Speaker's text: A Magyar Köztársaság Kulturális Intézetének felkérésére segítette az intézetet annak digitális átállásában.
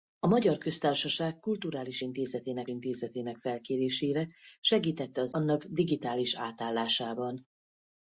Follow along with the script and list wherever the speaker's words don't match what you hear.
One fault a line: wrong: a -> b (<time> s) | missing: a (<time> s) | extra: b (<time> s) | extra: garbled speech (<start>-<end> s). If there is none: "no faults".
extra: Intézetének (2.7 s)
missing: intézetet (5.3 s)